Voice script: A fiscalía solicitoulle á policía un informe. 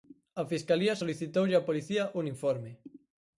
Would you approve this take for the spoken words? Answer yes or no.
yes